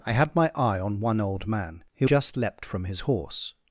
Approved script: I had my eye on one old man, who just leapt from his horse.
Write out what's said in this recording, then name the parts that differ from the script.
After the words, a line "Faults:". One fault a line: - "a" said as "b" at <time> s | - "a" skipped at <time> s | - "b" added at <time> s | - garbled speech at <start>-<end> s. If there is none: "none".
I had my eye on one old man, who just leapt from his horse.
Faults:
none